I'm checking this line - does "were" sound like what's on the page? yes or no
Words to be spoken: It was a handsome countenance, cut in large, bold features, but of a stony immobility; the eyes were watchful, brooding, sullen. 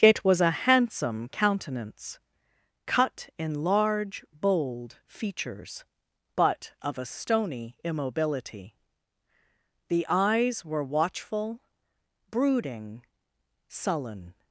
yes